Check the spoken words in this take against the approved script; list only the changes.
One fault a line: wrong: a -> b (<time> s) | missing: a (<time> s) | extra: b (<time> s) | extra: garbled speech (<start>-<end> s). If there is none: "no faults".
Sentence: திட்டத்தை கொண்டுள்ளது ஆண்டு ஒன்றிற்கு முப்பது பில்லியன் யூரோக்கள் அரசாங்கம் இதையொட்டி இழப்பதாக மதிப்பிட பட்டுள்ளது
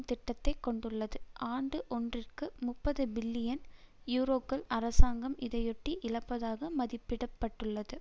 no faults